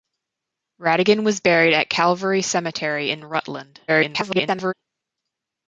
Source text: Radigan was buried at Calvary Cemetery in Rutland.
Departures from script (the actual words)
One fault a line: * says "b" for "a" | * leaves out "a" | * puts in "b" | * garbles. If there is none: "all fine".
* garbles